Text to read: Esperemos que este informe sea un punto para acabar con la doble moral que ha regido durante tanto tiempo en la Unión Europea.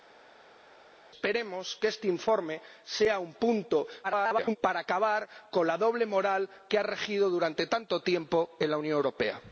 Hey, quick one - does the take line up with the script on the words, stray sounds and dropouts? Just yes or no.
no